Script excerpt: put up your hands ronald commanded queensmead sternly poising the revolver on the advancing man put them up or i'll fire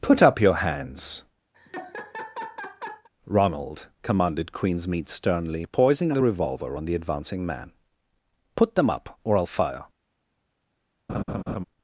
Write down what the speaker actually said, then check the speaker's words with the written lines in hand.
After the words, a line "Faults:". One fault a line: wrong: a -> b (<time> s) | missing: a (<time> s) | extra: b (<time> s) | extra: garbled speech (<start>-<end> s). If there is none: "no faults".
put up your hands ronald commanded queensmead sternly poising the revolver on the advancing man put them up or i'll fire
Faults:
no faults